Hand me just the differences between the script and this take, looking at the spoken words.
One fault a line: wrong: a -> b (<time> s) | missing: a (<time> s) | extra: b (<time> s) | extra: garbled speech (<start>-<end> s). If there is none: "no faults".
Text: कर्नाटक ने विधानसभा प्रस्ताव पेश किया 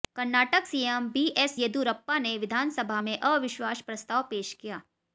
extra: सीएम बीएस येदियुरप्पा (0.6 s)
extra: में अविश्वास (3.0 s)